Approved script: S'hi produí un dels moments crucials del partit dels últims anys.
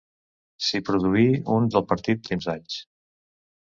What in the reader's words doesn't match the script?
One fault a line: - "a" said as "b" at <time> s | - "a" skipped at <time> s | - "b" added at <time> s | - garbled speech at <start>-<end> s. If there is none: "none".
- "dels moments crucials" skipped at 1.7 s
- "dels" skipped at 2.3 s